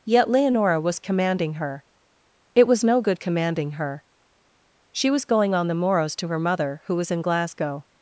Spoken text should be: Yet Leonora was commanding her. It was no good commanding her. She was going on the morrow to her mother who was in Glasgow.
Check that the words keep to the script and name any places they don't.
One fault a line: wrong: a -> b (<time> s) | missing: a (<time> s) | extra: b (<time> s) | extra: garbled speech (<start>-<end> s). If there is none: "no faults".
wrong: morrow -> morrows (5.7 s)